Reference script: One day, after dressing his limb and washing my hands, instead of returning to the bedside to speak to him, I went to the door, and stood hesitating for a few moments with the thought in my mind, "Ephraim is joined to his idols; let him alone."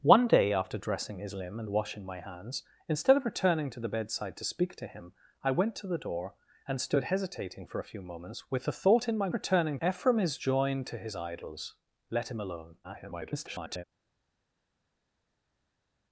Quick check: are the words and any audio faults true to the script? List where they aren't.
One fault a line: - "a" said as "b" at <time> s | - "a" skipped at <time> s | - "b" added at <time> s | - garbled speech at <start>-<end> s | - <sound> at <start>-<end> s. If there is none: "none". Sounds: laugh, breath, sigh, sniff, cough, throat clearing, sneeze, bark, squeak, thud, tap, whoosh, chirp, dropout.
- "mind" said as "returning" at 9.3 s
- garbled speech at 12.8-13.8 s